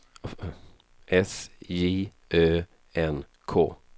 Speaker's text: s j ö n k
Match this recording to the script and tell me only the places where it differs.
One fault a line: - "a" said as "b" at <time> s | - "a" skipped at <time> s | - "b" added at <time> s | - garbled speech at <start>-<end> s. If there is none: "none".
none